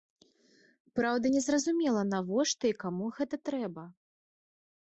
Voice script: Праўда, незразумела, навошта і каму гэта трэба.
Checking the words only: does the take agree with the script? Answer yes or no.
yes